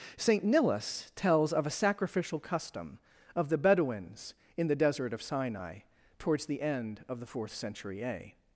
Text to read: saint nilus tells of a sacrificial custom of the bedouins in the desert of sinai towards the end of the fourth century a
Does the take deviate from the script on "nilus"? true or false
false